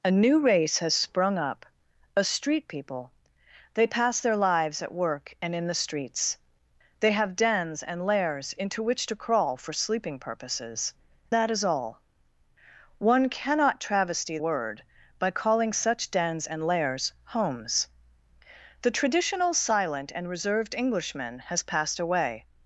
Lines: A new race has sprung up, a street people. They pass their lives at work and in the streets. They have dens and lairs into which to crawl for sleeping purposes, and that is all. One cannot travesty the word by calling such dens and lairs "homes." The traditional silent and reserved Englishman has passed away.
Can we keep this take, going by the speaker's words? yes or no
no